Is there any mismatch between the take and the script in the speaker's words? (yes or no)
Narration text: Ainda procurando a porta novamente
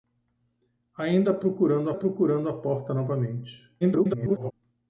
yes